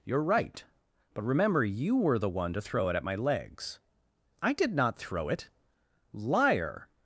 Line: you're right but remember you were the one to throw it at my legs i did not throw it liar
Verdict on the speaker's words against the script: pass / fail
pass